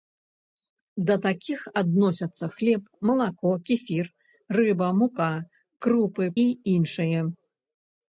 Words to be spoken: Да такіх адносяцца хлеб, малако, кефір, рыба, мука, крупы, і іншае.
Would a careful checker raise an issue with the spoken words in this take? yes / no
no